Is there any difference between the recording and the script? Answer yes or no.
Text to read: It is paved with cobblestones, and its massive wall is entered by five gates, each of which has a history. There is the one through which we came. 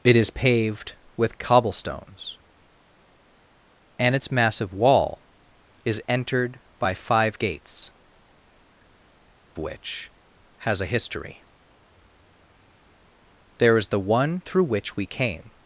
yes